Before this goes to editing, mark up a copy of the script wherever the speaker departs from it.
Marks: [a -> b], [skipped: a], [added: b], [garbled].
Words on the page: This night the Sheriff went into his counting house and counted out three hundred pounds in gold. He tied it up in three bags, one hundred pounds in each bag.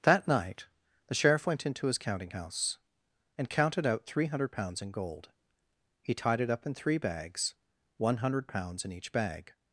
[This -> That] night the Sheriff went into his counting house and counted out three hundred pounds in gold. He tied it up in three bags, one hundred pounds in each bag.